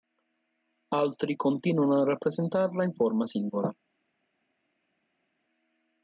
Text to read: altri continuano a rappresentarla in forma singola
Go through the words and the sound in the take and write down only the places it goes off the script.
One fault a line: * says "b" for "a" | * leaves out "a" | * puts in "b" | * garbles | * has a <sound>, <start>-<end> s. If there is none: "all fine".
all fine